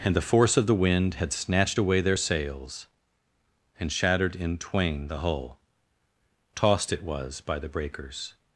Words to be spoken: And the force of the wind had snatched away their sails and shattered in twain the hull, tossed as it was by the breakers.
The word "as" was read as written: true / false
false